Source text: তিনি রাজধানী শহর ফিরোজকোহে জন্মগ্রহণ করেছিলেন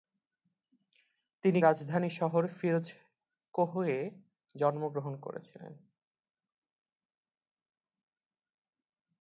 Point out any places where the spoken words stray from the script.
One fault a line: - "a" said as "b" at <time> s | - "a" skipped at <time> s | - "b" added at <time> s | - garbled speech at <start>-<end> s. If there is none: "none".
none